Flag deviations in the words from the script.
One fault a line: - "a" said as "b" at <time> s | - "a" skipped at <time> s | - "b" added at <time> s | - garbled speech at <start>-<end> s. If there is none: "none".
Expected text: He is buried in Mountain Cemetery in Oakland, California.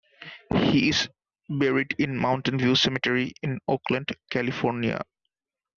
- "View" added at 2.6 s